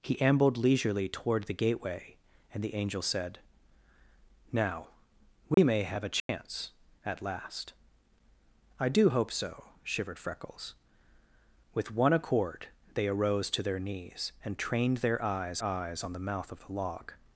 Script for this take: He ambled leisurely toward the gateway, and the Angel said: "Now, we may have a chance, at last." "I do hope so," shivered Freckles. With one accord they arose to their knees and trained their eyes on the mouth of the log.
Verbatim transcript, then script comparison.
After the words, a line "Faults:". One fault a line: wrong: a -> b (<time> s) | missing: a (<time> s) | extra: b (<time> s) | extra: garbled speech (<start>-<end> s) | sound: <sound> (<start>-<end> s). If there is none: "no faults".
He ambled leisurely toward the gateway, and the Angel said: "Now, we may have a chance, at last." "I do hope so," shivered Freckles. With one accord they arose to their knees and trained their eyes eyes on the mouth of the log.
Faults:
sound: dropout (5.5-5.6 s)
sound: dropout (6.2-6.3 s)
extra: eyes (15.6 s)